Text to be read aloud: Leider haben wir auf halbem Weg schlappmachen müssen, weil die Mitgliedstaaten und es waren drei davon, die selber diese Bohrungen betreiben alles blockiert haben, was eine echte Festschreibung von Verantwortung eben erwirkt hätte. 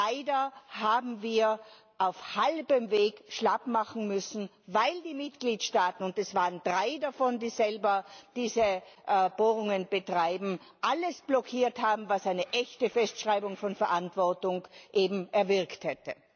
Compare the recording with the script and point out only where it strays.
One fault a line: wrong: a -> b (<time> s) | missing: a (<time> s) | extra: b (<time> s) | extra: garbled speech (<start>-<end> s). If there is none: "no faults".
no faults